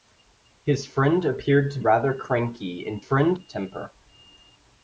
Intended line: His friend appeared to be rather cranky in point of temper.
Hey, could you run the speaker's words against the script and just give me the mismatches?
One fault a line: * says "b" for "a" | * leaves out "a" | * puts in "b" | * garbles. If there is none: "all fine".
* leaves out "be"
* says "friend" for "point"